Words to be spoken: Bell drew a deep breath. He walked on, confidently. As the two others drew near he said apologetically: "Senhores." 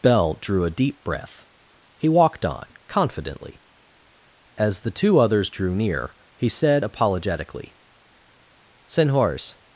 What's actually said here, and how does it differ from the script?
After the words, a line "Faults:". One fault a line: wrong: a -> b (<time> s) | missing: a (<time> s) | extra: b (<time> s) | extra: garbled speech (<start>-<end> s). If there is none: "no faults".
Bell drew a deep breath. He walked on, confidently. As the two others drew near he said apologetically: "Senhores."
Faults:
no faults